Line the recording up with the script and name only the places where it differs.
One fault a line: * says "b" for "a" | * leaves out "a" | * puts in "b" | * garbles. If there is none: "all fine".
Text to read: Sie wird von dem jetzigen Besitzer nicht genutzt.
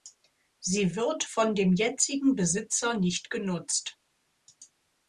all fine